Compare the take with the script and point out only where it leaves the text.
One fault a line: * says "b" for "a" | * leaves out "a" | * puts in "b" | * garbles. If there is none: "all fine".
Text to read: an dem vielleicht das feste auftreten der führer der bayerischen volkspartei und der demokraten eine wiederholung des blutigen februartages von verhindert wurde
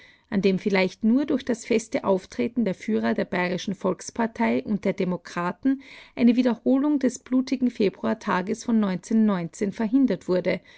* puts in "nur durch"